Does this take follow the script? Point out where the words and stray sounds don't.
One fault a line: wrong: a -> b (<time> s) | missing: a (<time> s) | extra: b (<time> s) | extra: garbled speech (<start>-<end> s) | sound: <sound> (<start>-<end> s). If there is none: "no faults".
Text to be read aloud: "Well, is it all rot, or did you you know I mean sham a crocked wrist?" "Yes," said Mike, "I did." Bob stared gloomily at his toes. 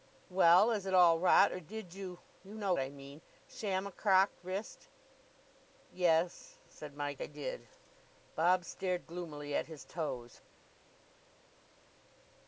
no faults